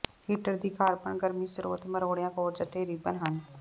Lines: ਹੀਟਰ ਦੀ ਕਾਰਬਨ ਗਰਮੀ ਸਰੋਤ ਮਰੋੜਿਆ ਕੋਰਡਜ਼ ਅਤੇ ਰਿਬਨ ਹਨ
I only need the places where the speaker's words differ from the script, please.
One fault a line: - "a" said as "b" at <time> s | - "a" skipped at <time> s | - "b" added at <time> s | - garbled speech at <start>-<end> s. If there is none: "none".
none